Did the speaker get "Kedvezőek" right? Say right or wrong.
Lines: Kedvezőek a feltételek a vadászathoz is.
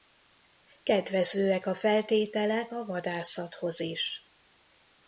right